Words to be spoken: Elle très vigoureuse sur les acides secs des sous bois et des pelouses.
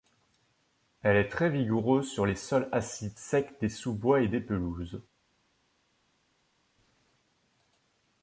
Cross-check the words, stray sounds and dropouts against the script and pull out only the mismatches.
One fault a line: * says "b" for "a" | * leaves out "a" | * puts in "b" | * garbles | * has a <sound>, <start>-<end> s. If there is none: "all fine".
* puts in "est"
* puts in "sols"